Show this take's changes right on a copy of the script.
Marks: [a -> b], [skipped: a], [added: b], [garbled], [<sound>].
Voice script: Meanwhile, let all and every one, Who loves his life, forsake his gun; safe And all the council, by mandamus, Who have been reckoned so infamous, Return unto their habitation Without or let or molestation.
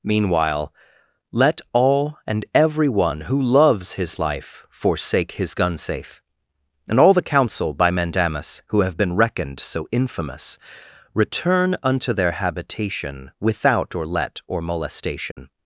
Meanwhile, let all and every one, Who loves his life, forsake his gun; safe And all the council, by mandamus, Who have been reckoned so infamous, Return unto their habitation Without or let or molestation. [dropout]